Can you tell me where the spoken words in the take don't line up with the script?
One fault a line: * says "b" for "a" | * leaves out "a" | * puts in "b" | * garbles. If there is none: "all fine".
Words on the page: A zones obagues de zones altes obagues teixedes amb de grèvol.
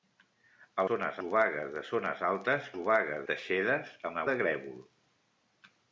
all fine